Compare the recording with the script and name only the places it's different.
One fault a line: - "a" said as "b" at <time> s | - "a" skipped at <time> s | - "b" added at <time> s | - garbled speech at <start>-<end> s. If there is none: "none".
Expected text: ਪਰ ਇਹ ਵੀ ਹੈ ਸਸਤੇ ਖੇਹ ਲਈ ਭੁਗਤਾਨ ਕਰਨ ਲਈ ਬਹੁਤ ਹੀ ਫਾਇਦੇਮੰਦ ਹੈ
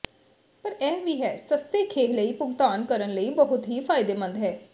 none